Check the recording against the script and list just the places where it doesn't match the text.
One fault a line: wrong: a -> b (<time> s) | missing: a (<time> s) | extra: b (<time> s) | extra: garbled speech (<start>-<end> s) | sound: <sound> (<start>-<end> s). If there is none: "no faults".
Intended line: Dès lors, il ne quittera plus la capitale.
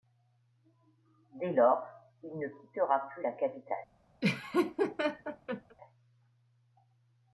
sound: laugh (4.2-5.8 s)